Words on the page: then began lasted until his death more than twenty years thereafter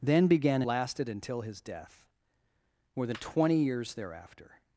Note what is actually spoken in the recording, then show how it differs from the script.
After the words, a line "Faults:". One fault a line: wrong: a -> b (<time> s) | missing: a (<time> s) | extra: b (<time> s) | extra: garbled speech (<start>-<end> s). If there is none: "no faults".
then began lasted until his death more than twenty years thereafter
Faults:
no faults